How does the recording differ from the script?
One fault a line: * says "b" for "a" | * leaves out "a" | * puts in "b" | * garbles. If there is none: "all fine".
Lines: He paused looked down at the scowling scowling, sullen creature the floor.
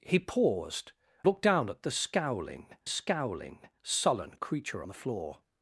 all fine